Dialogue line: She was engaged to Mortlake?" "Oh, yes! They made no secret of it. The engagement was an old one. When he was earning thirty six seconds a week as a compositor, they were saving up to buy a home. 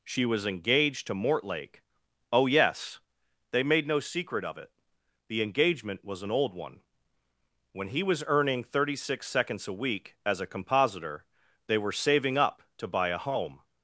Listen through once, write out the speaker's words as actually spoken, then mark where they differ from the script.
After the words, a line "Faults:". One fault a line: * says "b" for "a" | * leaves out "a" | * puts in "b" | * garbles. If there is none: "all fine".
She was engaged to Mortlake?" "Oh, yes! They made no secret of it. The engagement was an old one. When he was earning thirty six seconds a week as a compositor, they were saving up to buy a home.
Faults:
all fine